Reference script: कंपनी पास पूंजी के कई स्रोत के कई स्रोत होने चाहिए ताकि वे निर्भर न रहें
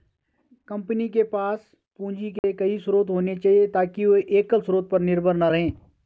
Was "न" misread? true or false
false